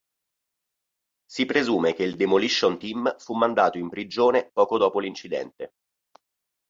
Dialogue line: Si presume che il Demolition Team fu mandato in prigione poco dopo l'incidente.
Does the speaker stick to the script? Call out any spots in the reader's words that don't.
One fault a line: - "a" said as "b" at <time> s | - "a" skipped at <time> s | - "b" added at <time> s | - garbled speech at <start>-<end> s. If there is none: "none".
none